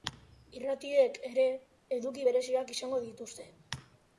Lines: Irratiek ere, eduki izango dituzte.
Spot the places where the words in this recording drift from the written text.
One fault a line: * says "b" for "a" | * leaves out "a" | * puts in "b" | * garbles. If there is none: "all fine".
* puts in "bereziak"